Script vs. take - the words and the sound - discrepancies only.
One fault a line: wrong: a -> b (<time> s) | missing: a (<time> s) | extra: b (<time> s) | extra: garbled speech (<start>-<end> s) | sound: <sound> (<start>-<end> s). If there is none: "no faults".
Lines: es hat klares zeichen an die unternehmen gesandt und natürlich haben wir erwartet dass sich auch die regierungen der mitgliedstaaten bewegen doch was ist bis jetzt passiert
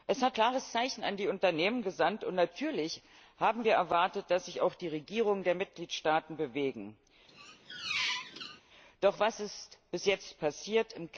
sound: squeak (7.3-8.6 s)